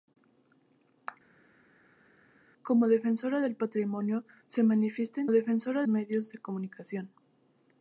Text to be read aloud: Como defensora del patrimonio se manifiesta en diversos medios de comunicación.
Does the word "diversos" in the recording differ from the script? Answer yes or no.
yes